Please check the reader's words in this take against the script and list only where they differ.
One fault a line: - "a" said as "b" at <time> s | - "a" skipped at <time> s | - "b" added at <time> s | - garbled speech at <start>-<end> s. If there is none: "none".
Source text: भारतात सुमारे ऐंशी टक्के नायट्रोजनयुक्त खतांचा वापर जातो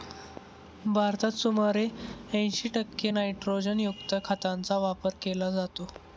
- "केला" added at 5.2 s